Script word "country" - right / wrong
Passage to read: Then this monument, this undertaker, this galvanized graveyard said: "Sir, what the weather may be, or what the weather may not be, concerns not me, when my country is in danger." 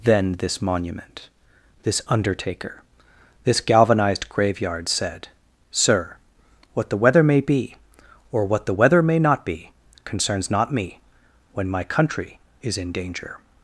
right